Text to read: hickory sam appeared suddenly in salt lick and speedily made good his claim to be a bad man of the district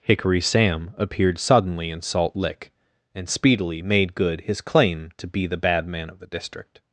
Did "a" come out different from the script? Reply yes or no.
yes